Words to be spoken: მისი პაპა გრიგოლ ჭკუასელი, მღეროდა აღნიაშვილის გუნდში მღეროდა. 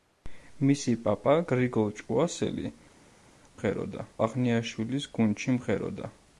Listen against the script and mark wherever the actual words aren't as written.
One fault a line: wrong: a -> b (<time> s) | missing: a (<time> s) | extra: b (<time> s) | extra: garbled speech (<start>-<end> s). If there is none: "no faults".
no faults